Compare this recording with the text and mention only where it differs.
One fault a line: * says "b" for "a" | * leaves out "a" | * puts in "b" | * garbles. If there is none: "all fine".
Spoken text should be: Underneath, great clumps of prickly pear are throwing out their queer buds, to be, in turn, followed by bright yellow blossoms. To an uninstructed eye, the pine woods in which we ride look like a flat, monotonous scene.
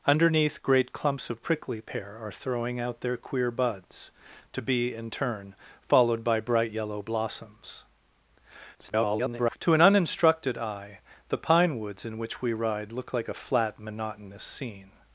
* garbles